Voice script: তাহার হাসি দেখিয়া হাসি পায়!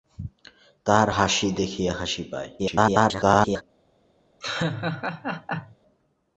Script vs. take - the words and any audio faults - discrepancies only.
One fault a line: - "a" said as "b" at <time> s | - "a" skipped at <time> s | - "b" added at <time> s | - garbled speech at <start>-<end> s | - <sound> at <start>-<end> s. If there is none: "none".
- garbled speech at 2.6-3.6 s
- laugh at 4.4-5.8 s